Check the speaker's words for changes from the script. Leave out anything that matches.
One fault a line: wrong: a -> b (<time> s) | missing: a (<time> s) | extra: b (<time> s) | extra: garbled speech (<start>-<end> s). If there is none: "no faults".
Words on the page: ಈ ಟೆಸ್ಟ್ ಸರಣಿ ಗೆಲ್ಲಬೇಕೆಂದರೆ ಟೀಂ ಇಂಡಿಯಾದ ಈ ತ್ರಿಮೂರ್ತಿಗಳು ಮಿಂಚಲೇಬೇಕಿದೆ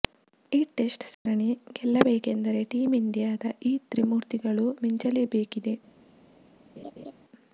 no faults